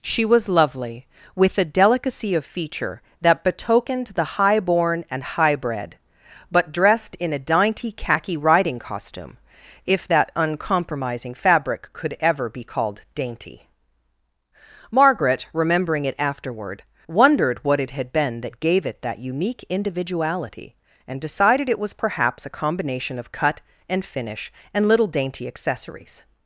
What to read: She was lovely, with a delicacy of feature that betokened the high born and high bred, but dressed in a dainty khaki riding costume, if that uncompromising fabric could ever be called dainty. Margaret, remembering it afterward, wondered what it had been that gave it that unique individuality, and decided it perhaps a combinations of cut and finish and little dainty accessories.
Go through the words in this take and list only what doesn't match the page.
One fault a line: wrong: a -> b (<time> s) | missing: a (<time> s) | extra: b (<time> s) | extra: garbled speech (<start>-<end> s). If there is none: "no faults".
extra: was (21.8 s)
wrong: combinations -> combination (22.6 s)